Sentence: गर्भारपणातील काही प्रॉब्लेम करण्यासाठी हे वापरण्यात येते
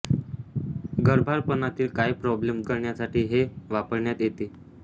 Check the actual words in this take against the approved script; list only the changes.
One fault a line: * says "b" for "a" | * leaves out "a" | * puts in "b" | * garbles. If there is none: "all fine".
all fine